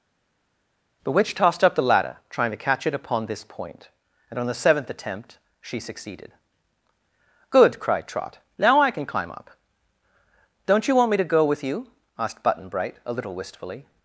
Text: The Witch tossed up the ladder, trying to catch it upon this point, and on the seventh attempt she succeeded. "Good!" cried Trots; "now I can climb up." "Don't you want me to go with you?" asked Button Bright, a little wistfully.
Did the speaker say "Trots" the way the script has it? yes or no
no